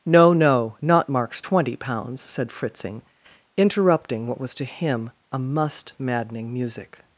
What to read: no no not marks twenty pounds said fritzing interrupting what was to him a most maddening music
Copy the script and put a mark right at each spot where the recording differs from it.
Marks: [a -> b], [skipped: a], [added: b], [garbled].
no no not marks twenty pounds said fritzing interrupting what was to him a [most -> must] maddening music